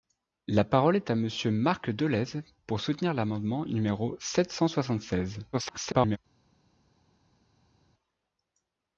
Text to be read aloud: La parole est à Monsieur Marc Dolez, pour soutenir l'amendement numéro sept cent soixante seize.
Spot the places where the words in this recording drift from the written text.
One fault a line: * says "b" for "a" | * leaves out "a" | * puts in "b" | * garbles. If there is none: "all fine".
* garbles